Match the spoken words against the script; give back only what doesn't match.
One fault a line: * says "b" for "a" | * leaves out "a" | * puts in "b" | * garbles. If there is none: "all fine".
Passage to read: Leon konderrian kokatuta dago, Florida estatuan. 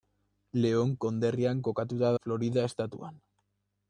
* leaves out "dago"